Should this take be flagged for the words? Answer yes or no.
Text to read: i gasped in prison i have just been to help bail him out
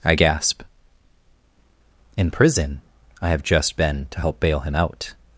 yes